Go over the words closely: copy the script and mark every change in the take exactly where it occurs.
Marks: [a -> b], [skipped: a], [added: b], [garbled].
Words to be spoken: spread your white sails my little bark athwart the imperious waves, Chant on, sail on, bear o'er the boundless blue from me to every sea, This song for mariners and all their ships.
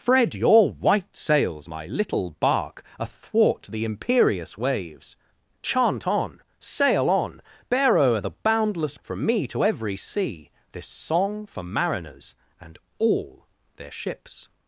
spread your white sails my little bark athwart the imperious waves, Chant on, sail on, bear o'er the boundless [skipped: blue] from me to every sea, This song for mariners and all their ships.